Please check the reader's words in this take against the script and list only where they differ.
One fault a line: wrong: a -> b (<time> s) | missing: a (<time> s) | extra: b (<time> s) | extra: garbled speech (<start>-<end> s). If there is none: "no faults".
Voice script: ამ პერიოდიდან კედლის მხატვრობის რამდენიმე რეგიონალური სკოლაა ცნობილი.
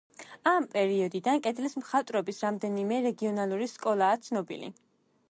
no faults